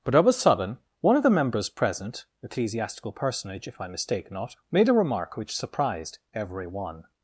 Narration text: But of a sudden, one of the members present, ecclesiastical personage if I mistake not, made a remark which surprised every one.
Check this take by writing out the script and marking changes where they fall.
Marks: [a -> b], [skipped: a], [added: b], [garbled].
But of a sudden, one of the members present, ecclesiastical personage if I mistake not, made a remark which surprised every one.